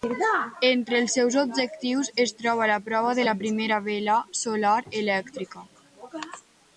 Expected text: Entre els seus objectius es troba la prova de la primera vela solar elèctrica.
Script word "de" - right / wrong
right